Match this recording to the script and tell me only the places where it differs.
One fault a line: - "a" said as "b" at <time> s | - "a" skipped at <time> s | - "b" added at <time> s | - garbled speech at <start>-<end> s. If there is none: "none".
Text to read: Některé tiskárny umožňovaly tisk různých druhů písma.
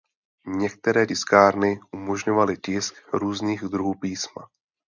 none